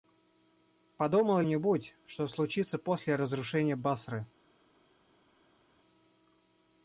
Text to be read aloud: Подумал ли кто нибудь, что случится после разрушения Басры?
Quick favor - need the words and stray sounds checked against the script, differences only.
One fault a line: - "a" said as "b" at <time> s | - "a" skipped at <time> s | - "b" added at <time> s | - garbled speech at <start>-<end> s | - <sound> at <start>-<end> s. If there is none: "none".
- "ли кто" skipped at 1.4 s